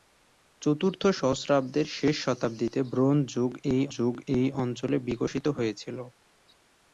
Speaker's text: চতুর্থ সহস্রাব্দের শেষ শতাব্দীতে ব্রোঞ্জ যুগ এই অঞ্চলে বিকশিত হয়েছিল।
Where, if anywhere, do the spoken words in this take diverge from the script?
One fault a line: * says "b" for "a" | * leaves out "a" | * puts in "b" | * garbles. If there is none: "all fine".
* puts in "যুগ এই"